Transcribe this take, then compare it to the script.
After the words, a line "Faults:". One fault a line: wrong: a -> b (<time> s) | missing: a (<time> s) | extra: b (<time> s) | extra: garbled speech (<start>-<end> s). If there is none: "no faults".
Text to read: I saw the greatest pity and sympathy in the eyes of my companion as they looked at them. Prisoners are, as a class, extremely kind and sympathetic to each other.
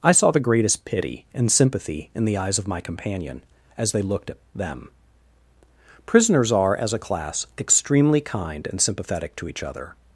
I saw the greatest pity and sympathy in the eyes of my companion as they looked at them. Prisoners are, as a class, extremely kind and sympathetic to each other.
Faults:
no faults